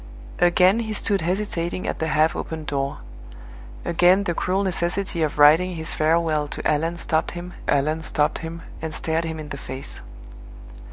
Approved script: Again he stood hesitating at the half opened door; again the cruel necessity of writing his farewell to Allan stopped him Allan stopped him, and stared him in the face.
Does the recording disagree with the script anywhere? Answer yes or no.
no